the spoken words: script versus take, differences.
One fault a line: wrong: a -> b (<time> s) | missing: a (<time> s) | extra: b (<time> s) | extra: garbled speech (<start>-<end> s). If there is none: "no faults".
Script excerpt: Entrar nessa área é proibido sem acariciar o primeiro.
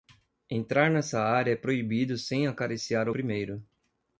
no faults